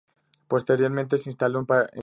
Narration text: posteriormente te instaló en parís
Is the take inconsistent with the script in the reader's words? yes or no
yes